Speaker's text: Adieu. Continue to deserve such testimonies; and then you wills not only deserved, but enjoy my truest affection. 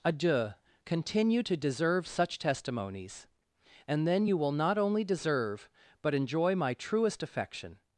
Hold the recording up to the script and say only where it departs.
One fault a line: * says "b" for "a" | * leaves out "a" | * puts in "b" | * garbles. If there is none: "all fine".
* says "will" for "wills"
* says "deserve" for "deserved"